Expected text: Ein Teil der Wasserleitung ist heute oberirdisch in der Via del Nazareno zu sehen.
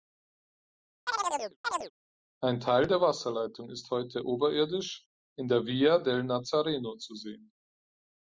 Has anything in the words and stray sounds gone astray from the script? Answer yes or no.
yes